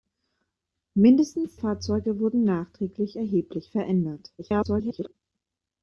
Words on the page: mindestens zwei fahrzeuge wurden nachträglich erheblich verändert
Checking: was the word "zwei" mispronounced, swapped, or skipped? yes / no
yes